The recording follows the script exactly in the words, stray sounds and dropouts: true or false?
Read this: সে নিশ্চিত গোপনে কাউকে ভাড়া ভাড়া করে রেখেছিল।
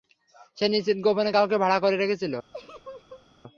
false